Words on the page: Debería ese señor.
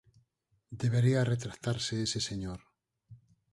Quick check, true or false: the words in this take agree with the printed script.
false